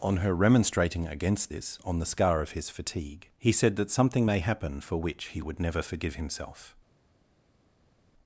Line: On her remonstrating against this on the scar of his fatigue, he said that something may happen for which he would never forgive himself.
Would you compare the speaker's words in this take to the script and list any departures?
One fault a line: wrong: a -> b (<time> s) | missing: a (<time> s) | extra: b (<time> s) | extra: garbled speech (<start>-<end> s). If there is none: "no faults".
no faults